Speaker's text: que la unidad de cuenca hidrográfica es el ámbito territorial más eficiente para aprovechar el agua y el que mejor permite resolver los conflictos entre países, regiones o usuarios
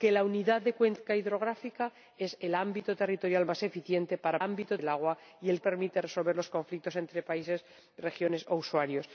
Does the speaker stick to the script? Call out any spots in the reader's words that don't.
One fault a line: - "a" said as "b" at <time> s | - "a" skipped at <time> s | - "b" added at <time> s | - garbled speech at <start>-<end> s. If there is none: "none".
- "aprovechar" said as "ámbito" at 4.4 s
- "que mejor" skipped at 5.6 s